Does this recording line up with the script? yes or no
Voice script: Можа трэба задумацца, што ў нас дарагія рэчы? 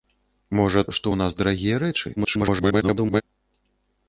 no